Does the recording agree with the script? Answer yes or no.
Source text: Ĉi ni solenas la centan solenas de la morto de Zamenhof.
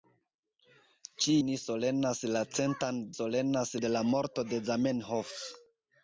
yes